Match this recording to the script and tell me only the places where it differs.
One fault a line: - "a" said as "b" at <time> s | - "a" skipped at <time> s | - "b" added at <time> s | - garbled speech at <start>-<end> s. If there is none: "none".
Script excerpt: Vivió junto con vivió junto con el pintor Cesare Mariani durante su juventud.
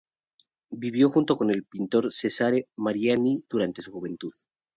- "vivió junto con" skipped at 1.5 s